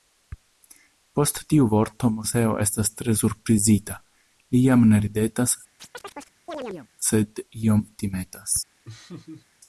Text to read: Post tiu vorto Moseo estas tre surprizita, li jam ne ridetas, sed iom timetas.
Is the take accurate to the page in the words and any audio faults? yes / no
no